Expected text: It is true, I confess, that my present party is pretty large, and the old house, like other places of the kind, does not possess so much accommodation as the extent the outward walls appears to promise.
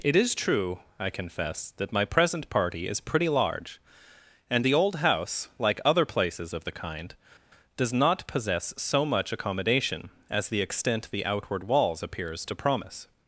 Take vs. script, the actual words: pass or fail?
pass